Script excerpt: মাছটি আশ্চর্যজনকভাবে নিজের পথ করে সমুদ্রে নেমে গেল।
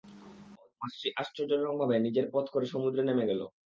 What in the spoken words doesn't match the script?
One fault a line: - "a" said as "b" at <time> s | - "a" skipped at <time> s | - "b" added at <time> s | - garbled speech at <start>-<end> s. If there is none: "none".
none